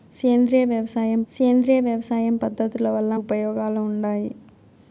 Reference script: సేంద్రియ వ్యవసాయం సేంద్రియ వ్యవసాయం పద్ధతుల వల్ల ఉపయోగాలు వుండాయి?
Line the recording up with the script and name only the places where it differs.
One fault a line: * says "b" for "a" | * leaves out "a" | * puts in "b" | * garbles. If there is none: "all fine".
all fine